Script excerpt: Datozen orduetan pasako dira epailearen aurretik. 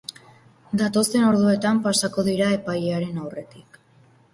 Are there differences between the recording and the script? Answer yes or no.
no